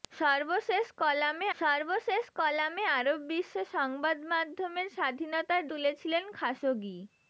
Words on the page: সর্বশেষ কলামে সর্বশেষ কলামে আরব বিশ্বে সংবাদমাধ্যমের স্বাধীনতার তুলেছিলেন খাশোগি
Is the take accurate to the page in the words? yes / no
yes